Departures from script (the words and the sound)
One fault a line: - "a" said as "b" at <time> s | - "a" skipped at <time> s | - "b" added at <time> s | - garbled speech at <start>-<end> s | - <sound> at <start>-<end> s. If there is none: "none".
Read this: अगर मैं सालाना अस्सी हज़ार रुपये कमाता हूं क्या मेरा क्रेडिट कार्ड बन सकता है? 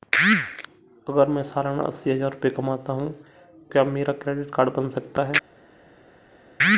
none